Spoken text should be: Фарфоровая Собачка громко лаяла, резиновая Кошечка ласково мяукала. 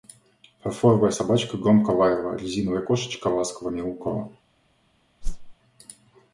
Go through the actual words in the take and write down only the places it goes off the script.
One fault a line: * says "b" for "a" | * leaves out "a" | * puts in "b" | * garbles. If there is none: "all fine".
all fine